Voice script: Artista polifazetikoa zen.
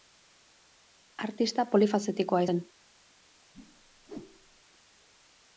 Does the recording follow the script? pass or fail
pass